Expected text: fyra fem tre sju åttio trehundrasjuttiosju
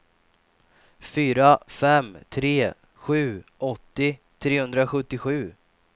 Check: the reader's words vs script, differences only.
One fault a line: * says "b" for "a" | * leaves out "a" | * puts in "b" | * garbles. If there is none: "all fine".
all fine